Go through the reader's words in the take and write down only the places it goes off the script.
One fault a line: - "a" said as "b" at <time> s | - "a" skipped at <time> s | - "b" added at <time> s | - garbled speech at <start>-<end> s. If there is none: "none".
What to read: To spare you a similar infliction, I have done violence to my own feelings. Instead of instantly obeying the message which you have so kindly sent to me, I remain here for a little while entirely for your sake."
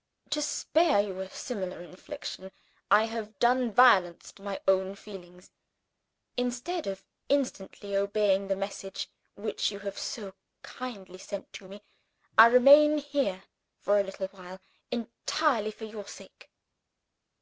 none